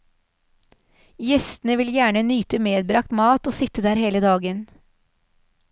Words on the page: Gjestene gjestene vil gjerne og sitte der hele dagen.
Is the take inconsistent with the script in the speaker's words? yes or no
yes